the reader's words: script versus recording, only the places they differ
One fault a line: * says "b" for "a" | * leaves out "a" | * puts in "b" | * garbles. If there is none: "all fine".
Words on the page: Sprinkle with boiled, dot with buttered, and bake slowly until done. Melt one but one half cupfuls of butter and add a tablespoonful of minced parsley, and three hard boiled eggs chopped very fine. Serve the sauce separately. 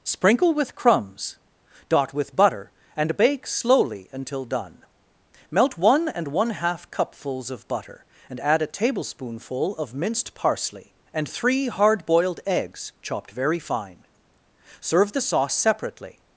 * says "crumbs" for "boiled"
* says "butter" for "buttered"
* says "and" for "but"